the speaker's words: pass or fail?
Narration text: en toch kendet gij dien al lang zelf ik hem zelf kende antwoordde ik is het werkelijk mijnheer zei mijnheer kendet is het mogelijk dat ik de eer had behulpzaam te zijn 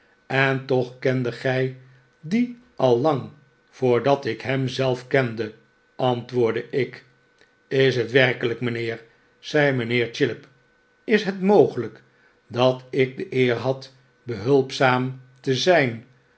fail